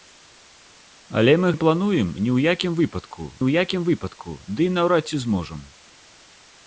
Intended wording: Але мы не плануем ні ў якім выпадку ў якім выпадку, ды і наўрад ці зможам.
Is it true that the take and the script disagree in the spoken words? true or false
false